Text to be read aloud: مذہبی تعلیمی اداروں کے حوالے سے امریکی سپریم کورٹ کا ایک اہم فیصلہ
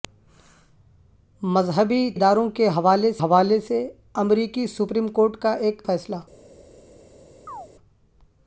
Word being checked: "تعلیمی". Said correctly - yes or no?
no